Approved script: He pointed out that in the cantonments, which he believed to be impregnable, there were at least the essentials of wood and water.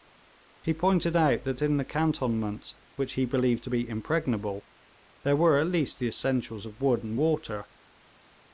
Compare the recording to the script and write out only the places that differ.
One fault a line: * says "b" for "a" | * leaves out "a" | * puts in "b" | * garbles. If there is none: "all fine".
all fine